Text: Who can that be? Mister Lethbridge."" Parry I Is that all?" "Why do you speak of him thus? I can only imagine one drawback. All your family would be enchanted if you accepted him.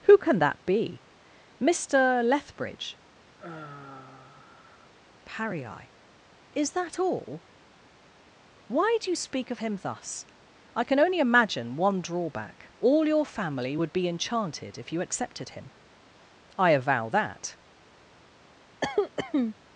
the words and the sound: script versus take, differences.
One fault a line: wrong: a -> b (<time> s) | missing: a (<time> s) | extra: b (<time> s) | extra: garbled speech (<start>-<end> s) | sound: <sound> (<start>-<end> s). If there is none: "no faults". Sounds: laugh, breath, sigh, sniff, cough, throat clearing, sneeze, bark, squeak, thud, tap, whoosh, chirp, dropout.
sound: sigh (3.4-4.9 s)
extra: I avow that (16.6 s)
sound: cough (18.8-19.5 s)